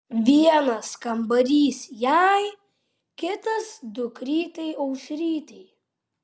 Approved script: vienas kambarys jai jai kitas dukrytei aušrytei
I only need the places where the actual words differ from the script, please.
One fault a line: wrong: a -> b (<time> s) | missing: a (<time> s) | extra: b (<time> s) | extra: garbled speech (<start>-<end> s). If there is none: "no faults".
missing: jai (2.4 s)